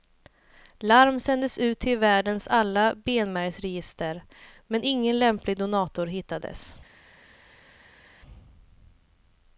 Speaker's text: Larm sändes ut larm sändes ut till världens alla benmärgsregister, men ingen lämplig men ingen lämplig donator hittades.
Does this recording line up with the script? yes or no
no